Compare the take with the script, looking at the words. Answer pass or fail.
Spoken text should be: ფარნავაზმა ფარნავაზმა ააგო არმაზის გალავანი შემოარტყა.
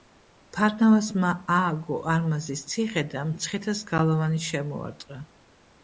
fail